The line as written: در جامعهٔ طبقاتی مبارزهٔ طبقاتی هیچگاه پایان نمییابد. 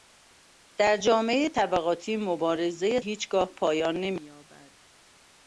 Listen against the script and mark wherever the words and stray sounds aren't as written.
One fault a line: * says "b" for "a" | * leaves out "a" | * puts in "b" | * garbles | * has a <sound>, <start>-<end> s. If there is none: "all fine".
* leaves out "طبقاتی"